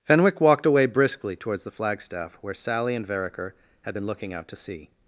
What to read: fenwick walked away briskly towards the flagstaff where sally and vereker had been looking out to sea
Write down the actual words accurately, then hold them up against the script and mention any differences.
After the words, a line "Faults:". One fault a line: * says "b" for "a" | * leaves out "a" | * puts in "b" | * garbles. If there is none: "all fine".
fenwick walked away briskly towards the flagstaff where sally and vereker had been looking out to sea
Faults:
all fine